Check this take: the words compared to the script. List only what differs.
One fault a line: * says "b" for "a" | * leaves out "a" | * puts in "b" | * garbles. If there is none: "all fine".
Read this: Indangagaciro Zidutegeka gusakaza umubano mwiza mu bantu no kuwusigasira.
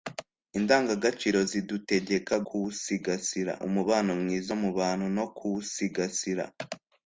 * says "kuwusigasira" for "gusakaza"